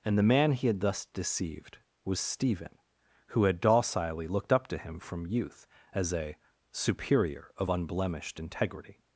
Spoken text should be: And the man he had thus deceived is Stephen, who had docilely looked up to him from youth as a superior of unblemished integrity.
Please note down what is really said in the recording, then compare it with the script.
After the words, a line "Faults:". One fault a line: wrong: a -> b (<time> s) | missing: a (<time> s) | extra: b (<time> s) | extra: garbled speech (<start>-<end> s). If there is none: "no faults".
And the man he had thus deceived was Stephen, who had docilely looked up to him from youth as a superior of unblemished integrity.
Faults:
wrong: is -> was (2.0 s)